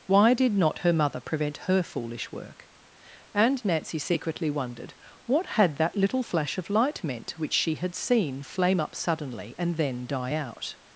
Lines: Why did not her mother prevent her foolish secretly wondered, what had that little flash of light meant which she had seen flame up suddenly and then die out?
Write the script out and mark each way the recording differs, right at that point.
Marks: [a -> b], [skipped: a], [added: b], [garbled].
Why did not her mother prevent her foolish [added: work And Nancy] secretly wondered, what had that little flash of light meant which she had seen flame up suddenly and then die out?